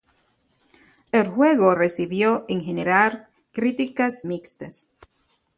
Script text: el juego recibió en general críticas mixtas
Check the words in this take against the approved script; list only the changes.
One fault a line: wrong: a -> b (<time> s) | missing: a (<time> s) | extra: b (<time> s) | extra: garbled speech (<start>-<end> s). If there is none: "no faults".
no faults